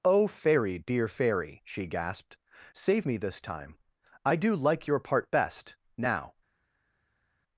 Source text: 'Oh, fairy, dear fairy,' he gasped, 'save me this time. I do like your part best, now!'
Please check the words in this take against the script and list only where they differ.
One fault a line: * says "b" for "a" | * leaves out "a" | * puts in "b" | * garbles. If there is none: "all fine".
* says "she" for "he"